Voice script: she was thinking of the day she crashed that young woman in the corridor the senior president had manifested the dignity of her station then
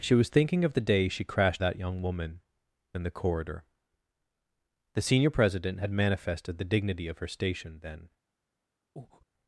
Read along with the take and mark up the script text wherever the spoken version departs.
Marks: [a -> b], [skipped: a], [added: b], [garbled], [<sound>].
she was thinking of the day she crashed that young woman in the corridor the senior president had manifested the dignity of her station then [breath]